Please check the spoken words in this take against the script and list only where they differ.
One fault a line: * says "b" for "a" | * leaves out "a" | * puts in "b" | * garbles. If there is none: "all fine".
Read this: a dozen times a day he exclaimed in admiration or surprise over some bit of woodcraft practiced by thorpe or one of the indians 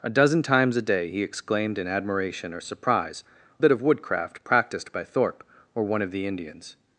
* leaves out "over some"